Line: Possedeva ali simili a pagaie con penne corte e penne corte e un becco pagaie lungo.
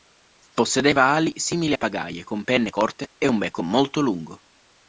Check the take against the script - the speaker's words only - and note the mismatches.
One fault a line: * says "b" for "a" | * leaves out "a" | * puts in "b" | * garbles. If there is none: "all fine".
* leaves out "penne corte e"
* says "molto" for "pagaie"